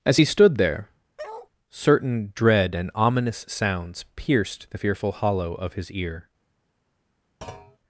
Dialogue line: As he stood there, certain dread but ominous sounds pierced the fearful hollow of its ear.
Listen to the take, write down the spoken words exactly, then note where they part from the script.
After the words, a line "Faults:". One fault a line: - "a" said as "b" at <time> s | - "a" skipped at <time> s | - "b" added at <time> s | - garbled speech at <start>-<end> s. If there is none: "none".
As he stood there, certain dread and ominous sounds pierced the fearful hollow of his ear.
Faults:
- "but" said as "and" at 2.7 s
- "its" said as "his" at 5.7 s